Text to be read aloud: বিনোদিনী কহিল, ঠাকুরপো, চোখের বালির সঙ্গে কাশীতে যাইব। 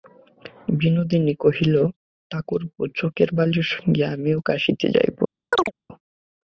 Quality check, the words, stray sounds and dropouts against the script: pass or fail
fail